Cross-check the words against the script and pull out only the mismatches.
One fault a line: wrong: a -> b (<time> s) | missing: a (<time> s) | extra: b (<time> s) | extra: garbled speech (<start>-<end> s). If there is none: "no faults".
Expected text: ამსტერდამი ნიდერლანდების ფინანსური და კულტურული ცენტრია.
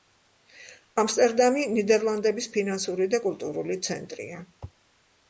no faults